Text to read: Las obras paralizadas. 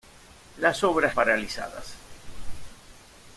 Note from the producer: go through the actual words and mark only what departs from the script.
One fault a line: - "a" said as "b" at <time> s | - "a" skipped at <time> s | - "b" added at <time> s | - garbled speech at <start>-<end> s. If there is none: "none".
none